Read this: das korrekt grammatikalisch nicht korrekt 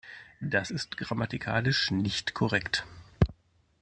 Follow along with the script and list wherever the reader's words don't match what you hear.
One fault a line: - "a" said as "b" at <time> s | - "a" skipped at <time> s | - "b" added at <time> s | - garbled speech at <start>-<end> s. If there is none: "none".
- "korrekt" said as "ist" at 0.7 s